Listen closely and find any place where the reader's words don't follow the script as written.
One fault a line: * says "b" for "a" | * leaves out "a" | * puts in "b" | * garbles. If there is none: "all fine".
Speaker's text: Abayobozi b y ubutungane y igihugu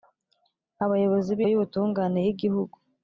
all fine